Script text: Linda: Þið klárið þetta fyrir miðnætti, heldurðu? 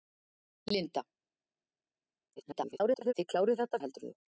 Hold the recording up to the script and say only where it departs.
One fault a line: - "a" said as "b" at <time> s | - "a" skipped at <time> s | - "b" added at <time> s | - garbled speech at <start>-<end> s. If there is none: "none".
- garbled speech at 2.4-3.1 s
- "fyrir miðnætti" skipped at 3.8 s